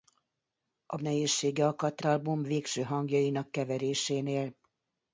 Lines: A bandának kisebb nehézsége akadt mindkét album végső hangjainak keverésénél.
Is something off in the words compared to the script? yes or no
yes